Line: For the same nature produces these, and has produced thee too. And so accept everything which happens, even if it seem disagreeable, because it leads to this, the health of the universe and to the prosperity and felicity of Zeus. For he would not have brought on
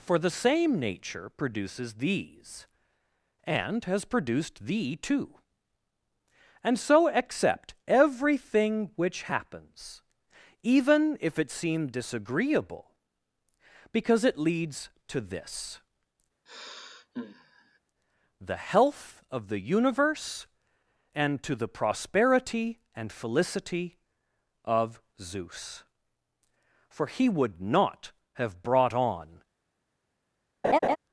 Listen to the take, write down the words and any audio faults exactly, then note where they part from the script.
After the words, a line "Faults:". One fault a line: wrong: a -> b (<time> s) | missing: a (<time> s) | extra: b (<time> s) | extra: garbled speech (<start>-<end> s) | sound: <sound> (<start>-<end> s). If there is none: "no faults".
For the same nature produces these, and has produced thee too. And so accept everything which happens, even if it seem disagreeable, because it leads to this, the health of the universe and to the prosperity and felicity of Zeus. For he would not have brought on
Faults:
sound: sigh (16.5-17.8 s)
sound: laugh (30.6-31.0 s)